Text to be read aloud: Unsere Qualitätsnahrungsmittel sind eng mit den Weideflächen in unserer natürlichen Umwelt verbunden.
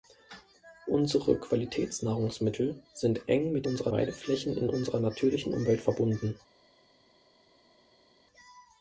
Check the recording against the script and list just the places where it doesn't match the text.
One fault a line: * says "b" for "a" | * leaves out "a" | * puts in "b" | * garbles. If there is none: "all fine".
* says "unserer" for "den"